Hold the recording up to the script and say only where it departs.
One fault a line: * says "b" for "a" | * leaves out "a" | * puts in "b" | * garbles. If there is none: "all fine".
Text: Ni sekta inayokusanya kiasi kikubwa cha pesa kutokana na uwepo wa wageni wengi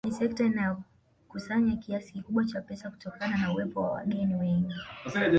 all fine